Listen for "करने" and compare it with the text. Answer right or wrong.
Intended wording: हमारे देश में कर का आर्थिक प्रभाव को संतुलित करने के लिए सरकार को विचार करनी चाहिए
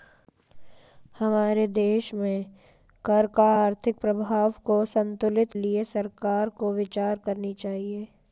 wrong